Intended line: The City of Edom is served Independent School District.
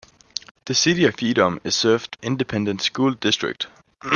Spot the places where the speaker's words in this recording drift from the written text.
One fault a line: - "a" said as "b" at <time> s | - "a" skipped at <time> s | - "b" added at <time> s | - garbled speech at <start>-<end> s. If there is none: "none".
none